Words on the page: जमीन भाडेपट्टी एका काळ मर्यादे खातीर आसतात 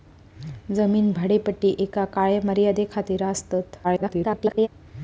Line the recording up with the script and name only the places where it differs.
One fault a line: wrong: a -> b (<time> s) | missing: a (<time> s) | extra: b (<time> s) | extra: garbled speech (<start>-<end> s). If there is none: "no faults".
extra: garbled speech (3.8-4.7 s)